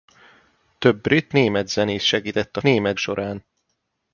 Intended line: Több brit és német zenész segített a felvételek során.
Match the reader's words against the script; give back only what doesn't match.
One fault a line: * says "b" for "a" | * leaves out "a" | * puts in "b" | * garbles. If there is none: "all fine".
* leaves out "és"
* says "német" for "felvételek"